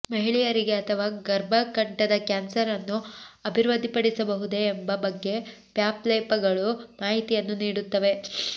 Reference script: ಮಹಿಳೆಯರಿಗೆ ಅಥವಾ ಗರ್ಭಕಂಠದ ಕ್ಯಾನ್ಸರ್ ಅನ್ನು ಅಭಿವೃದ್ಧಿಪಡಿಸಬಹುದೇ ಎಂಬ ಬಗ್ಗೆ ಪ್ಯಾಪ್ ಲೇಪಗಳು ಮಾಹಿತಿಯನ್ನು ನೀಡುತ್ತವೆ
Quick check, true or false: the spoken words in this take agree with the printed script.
true